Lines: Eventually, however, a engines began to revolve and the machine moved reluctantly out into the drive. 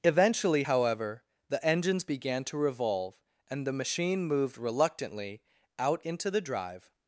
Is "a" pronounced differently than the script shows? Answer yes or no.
yes